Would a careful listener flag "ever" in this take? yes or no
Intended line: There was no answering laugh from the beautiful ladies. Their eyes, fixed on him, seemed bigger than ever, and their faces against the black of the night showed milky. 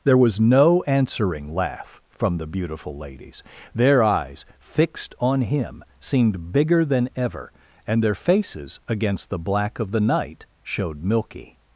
no